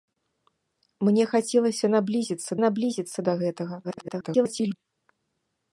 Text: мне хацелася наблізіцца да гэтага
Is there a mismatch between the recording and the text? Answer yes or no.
yes